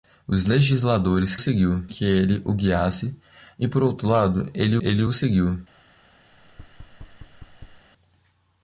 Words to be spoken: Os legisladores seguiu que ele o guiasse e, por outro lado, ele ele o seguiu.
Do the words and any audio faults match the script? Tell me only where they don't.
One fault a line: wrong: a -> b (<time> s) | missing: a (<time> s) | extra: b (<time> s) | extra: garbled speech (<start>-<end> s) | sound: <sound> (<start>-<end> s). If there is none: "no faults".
sound: thud (6.3-7.9 s)